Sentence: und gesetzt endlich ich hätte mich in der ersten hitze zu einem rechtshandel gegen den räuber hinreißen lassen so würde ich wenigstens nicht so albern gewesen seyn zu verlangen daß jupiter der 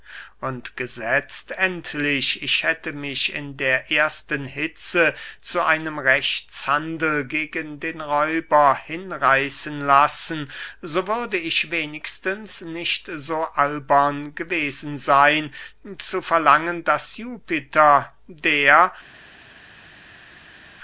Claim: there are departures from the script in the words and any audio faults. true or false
false